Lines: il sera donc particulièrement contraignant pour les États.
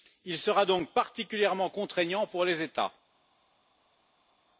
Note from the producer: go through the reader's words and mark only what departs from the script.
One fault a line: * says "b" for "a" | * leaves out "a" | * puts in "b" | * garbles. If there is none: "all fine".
all fine